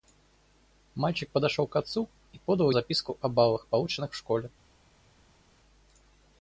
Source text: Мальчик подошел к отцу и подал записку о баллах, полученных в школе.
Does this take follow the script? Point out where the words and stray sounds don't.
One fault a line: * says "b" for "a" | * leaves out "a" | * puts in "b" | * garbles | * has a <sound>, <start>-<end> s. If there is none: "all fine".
all fine